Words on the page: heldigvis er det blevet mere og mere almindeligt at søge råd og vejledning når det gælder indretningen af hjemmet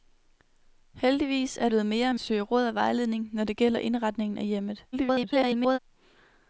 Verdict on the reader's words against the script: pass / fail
fail